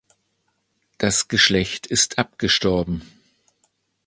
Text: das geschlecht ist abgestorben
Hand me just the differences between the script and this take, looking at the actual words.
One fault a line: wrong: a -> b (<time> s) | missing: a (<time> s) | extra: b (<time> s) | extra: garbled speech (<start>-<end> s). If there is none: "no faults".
no faults